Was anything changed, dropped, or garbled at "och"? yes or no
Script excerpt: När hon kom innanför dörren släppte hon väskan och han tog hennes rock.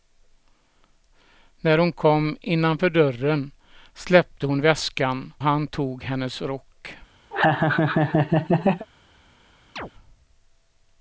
yes